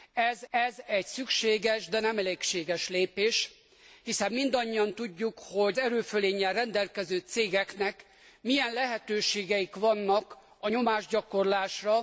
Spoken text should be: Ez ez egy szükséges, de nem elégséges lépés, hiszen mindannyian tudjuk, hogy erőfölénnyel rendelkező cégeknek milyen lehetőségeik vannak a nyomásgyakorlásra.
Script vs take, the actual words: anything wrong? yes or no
no